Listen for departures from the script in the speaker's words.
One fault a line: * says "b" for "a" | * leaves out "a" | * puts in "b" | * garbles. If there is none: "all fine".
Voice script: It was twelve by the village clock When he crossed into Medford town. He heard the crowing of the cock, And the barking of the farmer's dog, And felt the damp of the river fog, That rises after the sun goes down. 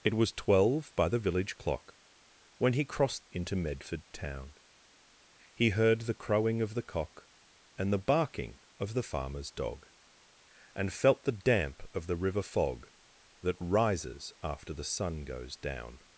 all fine